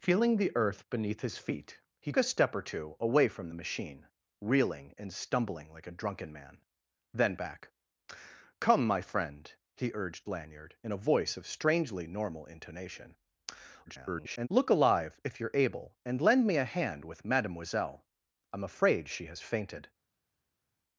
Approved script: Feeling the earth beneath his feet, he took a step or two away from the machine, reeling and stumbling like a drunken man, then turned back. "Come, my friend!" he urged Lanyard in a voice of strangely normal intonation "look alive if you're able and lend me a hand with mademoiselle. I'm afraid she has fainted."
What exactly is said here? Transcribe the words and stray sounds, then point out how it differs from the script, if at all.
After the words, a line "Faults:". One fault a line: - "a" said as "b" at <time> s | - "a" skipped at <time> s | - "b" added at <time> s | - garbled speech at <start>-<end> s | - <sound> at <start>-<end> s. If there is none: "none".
Feeling the earth beneath his feet, he a step or two away from the machine, reeling and stumbling like a drunken man, then back. "Come, my friend!" he urged Lanyard in a voice of strangely normal intonation [garbled] "look alive if you're able and lend me a hand with mademoiselle. I'm afraid she has fainted."
Faults:
- "took" skipped at 2.1 s
- "turned" skipped at 7.3 s
- garbled speech at 13.9-14.5 s